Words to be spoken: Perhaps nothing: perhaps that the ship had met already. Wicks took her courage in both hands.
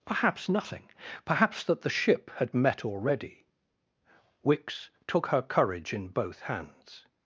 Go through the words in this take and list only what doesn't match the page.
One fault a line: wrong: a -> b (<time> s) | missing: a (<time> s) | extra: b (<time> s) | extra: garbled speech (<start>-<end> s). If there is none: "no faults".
no faults